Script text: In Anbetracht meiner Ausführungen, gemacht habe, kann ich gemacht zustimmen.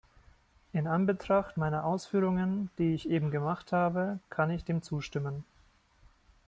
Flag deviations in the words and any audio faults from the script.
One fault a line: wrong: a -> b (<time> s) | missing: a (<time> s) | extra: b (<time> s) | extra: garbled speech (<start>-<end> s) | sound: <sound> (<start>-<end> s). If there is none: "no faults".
extra: die ich eben (2.8 s)
wrong: gemacht -> dem (4.6 s)